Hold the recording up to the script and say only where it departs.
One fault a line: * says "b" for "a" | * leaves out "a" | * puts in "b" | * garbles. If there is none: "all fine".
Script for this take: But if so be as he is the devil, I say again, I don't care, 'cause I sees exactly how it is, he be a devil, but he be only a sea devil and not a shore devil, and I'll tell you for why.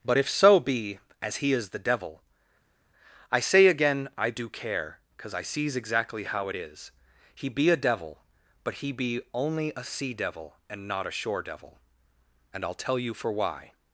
* says "do" for "don't"